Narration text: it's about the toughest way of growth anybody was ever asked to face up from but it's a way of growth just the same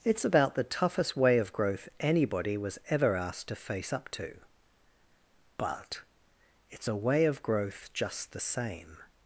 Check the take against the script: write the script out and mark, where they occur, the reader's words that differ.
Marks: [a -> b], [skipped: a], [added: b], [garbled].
it's about the toughest way of growth anybody was ever asked to face up [from -> to] but it's a way of growth just the same